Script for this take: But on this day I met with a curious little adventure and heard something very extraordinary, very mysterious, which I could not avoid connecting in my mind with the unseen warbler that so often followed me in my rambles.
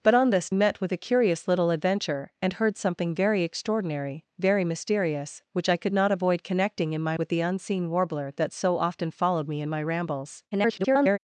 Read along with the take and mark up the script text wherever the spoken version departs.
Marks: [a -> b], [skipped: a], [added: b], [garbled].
But on this [skipped: day I] met with a curious little adventure and heard something very extraordinary, very mysterious, which I could not avoid connecting in my [skipped: mind] with the unseen warbler that so often followed me in my rambles. [garbled]